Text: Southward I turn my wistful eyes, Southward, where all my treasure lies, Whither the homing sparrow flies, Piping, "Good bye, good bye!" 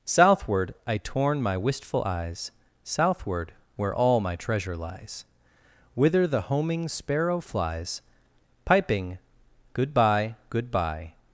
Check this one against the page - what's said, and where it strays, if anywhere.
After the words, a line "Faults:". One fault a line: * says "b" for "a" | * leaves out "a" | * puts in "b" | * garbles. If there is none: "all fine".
Southward I torn my wistful eyes, Southward, where all my treasure lies, Whither the homing sparrow flies, Piping, "Good bye, good bye!"
Faults:
* says "torn" for "turn"